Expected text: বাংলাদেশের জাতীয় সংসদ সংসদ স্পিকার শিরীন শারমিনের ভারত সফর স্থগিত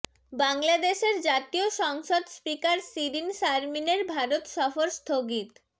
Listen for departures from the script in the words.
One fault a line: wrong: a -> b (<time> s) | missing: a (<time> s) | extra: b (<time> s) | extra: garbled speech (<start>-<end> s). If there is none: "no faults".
missing: সংসদ (2.2 s)